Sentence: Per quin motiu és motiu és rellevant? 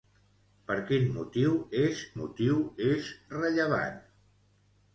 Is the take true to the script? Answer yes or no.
yes